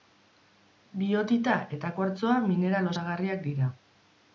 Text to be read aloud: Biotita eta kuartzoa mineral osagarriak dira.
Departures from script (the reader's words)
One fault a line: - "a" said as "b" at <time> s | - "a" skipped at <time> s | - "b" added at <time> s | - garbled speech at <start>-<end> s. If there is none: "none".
none